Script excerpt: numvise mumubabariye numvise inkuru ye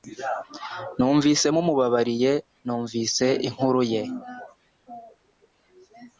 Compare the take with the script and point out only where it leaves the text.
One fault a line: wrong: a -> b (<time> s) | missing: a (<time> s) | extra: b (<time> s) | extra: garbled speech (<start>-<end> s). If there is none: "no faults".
no faults